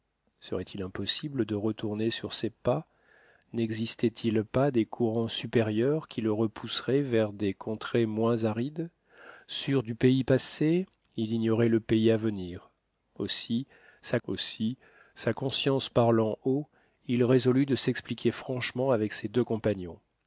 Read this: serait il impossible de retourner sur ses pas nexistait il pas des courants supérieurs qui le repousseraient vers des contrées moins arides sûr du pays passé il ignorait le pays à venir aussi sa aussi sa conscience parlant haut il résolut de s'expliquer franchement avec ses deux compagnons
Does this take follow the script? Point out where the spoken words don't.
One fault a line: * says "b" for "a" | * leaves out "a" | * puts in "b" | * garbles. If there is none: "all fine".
all fine